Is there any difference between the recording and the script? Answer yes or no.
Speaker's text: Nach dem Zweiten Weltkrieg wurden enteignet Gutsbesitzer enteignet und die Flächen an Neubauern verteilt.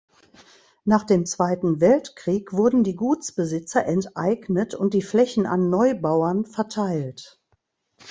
yes